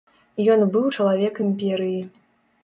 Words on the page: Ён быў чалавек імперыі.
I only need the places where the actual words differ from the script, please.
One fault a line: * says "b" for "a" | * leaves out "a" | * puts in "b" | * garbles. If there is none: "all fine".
all fine